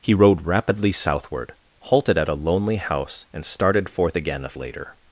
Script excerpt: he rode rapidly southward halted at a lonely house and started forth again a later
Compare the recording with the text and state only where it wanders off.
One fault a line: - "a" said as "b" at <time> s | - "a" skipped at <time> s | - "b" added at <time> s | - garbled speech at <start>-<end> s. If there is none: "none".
none